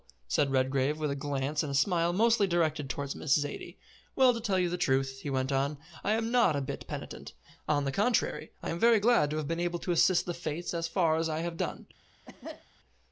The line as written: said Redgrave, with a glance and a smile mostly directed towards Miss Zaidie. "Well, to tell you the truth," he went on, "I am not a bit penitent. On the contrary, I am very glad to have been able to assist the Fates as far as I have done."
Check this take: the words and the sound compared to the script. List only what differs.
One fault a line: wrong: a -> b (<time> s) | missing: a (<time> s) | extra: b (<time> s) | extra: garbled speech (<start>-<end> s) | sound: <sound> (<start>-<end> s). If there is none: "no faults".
sound: cough (12.3-12.7 s)